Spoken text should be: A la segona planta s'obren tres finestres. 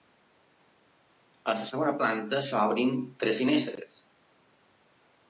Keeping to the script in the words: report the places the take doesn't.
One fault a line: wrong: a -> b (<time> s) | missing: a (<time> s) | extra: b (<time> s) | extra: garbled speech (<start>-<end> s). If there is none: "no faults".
no faults